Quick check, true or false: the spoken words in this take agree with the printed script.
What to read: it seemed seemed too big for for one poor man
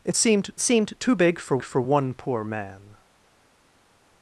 true